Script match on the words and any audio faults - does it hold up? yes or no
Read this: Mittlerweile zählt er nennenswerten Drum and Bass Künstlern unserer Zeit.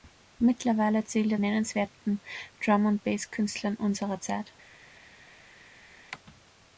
yes